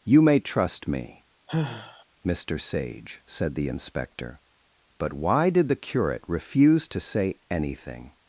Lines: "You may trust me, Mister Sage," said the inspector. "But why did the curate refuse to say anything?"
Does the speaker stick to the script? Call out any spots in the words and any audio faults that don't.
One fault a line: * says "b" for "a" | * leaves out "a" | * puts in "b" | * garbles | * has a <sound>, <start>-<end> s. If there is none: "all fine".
* has a sigh, 1.5-2.0 s